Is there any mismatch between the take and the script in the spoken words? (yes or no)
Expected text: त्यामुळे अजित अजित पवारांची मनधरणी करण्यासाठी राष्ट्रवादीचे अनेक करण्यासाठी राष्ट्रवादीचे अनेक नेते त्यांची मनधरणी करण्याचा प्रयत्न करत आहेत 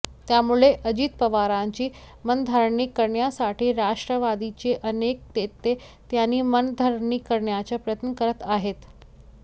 yes